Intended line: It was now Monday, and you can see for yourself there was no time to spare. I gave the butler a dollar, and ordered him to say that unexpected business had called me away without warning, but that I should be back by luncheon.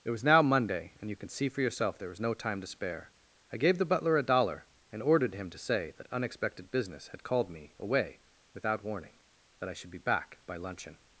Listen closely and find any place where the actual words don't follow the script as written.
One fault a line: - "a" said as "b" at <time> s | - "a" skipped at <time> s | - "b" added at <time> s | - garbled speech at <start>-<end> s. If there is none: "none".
- "but" skipped at 9.1 s